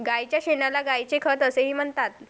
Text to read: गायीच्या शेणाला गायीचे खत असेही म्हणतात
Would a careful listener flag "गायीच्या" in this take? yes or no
no